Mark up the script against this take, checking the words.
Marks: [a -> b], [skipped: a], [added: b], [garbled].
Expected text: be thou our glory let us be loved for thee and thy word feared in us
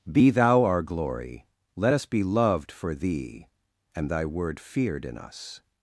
be thou our glory let us be loved for thee and thy word feared in us